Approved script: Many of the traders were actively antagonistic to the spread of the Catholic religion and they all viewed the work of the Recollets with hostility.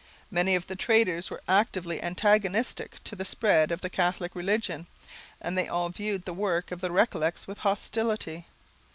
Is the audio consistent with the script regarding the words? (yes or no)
yes